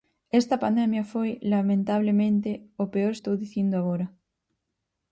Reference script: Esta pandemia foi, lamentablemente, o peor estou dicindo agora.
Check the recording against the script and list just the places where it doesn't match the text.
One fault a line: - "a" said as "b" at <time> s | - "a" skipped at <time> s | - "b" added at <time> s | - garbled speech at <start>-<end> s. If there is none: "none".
none